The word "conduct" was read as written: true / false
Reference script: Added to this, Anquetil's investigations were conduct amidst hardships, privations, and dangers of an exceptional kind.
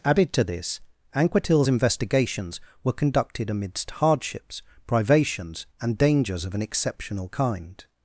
false